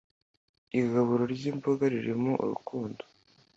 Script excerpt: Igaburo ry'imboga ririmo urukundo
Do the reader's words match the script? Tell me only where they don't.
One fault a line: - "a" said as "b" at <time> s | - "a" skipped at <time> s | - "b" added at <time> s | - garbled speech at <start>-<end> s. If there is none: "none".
none